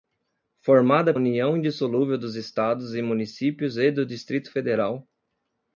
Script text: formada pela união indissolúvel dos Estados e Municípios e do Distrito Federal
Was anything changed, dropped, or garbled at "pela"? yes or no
yes